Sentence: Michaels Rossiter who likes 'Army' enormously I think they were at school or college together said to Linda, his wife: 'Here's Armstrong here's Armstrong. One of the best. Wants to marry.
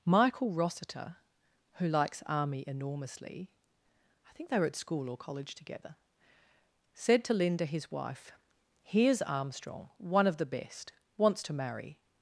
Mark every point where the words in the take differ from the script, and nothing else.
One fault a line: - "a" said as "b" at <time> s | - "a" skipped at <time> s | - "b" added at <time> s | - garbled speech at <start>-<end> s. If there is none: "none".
- "Michaels" said as "Michael" at 0.1 s
- "here's Armstrong" skipped at 9.9 s